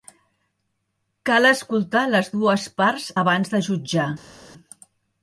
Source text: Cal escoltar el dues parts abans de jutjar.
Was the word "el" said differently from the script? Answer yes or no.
yes